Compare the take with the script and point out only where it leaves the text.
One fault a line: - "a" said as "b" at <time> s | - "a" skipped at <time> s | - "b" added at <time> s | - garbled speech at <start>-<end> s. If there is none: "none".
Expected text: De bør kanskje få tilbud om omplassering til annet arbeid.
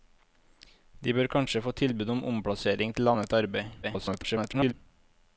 - garbled speech at 3.8-4.7 s